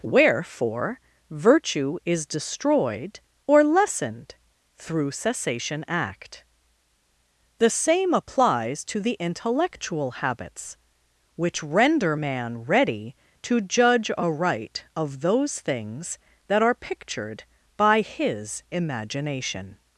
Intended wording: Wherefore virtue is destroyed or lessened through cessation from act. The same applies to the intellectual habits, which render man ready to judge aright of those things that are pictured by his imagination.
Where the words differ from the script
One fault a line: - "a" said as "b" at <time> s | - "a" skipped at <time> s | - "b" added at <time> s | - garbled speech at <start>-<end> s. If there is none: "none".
- "from" skipped at 5.8 s